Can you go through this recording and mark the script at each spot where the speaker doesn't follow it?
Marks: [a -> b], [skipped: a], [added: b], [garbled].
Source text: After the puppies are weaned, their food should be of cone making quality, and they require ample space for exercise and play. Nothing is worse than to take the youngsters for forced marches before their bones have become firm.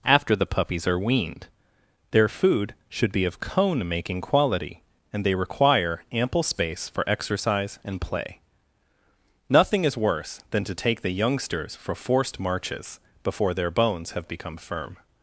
After the puppies are weaned, their food should be of cone making quality, and they require ample space for exercise and play. Nothing is worse than to take the youngsters for forced marches before their bones have become firm.